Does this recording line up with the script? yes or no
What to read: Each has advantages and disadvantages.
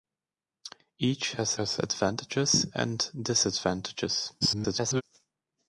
no